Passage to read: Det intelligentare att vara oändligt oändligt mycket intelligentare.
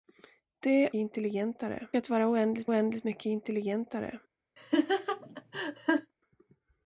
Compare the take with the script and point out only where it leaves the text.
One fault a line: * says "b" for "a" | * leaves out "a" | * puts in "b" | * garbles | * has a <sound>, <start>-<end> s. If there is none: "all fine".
* has a laugh, 4.6-6.1 s